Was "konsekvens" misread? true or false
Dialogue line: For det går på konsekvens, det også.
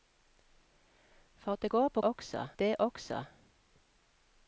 true